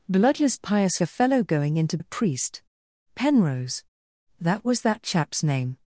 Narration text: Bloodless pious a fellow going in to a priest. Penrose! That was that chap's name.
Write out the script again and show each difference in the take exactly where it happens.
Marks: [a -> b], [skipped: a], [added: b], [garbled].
Bloodless pious a fellow going in to a priest. Penrose! That was that chap's name.